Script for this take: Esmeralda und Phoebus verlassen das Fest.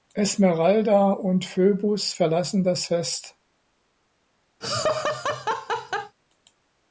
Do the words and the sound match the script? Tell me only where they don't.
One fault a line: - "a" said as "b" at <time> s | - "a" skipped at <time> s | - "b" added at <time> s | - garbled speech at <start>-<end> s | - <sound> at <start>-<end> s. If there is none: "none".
- laugh at 4.6-6.2 s